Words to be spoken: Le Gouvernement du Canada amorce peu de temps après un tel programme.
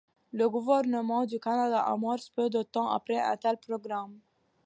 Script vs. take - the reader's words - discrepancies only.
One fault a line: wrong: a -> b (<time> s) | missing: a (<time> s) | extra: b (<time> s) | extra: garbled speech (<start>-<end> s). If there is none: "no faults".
no faults